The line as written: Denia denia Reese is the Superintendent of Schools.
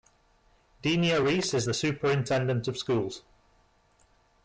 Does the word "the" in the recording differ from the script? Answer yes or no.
no